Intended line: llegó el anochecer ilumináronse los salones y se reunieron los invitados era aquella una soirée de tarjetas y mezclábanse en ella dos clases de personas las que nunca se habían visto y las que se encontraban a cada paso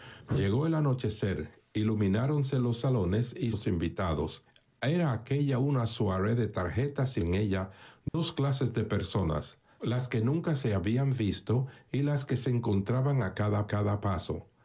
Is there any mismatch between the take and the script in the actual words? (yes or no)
yes